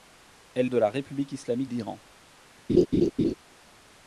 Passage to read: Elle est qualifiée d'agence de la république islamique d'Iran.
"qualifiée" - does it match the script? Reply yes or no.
no